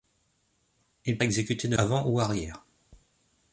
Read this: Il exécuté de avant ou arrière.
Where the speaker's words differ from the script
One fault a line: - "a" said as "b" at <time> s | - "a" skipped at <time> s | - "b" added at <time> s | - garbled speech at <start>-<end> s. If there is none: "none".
none